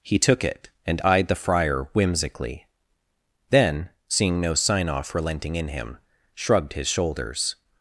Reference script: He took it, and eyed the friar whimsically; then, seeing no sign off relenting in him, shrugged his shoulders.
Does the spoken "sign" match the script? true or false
true